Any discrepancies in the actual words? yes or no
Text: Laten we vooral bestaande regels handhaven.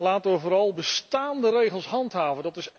no